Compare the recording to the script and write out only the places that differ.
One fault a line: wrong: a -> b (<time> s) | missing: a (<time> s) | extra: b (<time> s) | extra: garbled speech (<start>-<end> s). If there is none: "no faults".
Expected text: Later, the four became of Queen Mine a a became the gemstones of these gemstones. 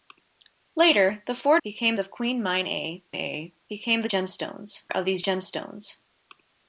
no faults